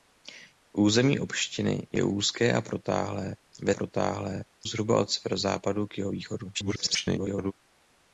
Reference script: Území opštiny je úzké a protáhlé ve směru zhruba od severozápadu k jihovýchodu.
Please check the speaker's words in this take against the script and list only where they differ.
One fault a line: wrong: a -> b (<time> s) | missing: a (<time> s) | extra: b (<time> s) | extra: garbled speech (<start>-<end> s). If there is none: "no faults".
wrong: směru -> protáhlé (3.7 s)
extra: garbled speech (6.5-7.5 s)